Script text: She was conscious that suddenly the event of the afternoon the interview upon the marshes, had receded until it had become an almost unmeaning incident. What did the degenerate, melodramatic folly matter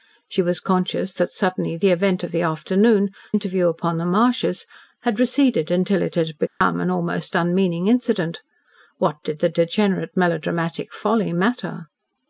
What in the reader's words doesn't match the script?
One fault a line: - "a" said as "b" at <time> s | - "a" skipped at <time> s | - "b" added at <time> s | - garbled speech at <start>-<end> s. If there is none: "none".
- "the" skipped at 3.1 s